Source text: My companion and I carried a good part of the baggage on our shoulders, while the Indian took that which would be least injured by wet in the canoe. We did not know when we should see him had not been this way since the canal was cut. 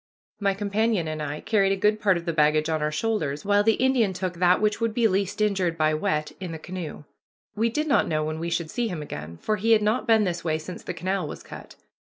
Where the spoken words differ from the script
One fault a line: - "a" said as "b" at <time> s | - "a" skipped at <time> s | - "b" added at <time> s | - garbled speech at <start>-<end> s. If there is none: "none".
- "again for he" added at 9.0 s